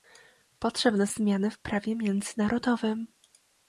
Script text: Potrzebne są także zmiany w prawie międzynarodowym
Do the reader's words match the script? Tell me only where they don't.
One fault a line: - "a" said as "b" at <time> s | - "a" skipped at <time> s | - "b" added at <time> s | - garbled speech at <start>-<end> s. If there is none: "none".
- "są także" skipped at 1.1 s